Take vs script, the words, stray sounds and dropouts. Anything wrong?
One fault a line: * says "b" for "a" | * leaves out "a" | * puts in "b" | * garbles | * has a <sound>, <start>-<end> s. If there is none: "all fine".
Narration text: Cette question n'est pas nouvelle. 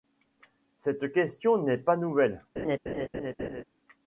* has a laugh, 2.6-3.6 s